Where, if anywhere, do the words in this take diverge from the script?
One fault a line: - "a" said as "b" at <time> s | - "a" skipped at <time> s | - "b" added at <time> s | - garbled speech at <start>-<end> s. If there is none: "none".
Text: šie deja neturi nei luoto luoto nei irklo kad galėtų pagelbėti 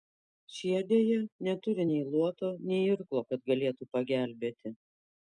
- "luoto" skipped at 2.5 s